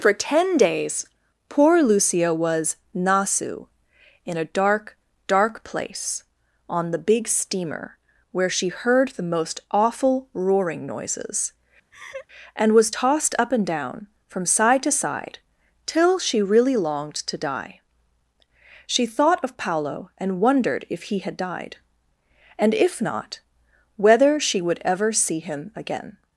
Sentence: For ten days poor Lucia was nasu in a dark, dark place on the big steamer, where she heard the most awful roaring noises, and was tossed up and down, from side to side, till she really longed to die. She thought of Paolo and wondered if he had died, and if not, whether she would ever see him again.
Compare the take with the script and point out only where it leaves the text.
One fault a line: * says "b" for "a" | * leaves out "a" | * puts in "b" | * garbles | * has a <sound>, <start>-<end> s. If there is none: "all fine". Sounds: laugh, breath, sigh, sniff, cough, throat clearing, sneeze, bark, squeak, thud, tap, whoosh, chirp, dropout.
* has a laugh, 11.9-12.3 s